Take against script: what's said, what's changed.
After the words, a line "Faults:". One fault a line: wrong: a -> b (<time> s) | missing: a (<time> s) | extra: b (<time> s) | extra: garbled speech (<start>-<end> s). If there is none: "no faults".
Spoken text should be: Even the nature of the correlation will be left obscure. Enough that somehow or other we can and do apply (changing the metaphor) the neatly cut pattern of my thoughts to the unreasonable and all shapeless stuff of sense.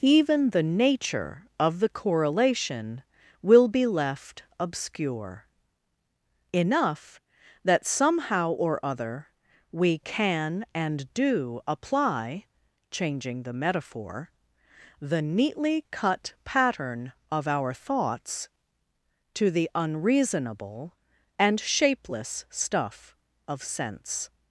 Even the nature of the correlation will be left obscure. Enough that somehow or other we can and do apply (changing the metaphor) the neatly cut pattern of our thoughts to the unreasonable and shapeless stuff of sense.
Faults:
wrong: my -> our (17.5 s)
missing: all (21.6 s)